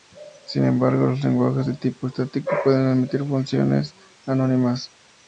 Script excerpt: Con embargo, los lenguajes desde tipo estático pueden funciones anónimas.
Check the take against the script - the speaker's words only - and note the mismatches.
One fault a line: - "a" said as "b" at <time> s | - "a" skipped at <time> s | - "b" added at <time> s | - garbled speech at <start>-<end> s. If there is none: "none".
- "Con" said as "Sin" at 0.5 s
- "desde" said as "de" at 1.6 s
- "admitir" added at 2.9 s